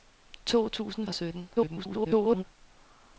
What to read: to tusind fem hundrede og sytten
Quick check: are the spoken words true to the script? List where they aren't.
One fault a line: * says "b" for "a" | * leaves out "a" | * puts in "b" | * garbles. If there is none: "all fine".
* leaves out "fem hundrede"
* garbles